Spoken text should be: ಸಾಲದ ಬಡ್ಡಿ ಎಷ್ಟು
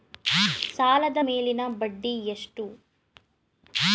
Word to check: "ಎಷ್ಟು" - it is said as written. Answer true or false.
true